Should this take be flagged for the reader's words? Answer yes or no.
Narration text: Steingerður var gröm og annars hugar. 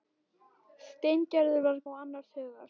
yes